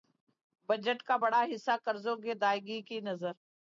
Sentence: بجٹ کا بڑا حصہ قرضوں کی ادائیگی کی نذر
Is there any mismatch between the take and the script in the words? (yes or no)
no